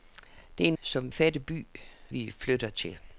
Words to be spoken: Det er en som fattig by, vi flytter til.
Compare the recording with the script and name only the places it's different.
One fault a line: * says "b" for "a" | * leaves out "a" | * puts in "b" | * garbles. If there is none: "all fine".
all fine